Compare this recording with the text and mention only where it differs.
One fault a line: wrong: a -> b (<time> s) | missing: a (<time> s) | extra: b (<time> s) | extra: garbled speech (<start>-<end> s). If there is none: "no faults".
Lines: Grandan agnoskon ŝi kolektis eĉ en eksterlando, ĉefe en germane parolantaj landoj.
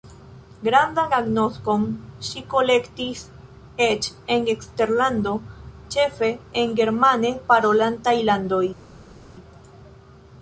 no faults